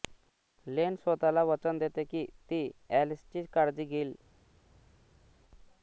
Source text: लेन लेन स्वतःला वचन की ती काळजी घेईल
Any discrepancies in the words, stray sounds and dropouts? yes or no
yes